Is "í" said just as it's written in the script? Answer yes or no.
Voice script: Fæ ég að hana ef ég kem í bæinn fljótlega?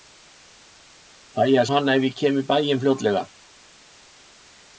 yes